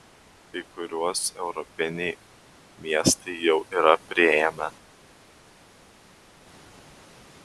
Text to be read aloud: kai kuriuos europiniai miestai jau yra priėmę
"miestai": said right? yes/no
yes